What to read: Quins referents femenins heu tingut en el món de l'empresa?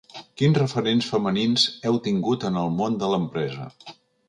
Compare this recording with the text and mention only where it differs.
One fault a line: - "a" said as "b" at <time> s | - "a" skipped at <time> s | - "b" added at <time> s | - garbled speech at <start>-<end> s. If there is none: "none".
none